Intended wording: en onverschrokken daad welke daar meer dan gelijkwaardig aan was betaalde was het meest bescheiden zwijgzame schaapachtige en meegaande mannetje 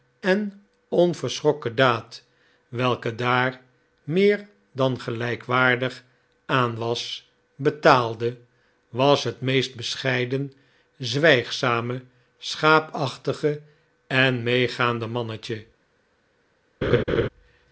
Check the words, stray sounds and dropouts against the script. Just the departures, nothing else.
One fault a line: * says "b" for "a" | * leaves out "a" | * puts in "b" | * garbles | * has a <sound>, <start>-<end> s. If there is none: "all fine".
* has a laugh, 16.8-17.3 s